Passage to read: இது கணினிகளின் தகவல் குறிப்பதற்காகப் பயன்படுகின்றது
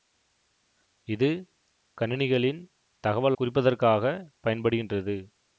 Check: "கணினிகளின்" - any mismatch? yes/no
no